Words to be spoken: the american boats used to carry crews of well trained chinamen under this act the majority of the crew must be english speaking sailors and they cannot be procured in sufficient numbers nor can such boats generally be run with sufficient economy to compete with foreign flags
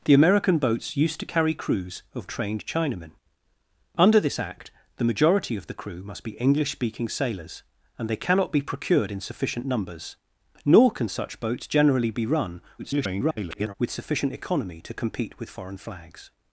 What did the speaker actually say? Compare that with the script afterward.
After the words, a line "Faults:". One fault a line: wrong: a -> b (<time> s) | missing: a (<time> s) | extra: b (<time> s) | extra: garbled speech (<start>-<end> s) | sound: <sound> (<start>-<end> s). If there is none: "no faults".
the american boats used to carry crews of trained chinamen under this act the majority of the crew must be english speaking sailors and they cannot be procured in sufficient numbers nor can such boats generally be run [garbled] with sufficient economy to compete with foreign flags
Faults:
missing: well (2.3 s)
extra: garbled speech (12.8-13.7 s)